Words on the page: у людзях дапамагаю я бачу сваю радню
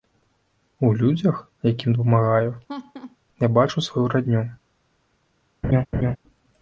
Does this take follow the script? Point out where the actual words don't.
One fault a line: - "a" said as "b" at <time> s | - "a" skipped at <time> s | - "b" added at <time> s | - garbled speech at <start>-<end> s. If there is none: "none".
- "якім" added at 1.6 s